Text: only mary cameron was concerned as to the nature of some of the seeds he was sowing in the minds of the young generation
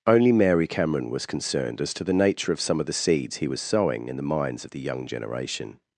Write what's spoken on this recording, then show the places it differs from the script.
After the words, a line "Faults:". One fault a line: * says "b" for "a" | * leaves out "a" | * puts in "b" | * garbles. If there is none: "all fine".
only mary cameron was concerned as to the nature of some of the seeds he was sowing in the minds of the young generation
Faults:
all fine